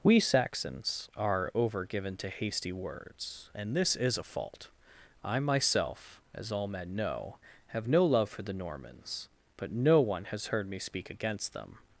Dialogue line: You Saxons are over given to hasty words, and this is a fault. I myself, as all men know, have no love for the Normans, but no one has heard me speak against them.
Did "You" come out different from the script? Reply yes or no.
yes